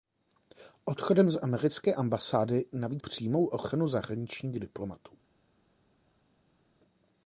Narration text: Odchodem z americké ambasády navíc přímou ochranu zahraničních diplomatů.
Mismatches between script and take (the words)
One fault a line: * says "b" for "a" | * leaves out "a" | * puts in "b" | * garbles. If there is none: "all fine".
all fine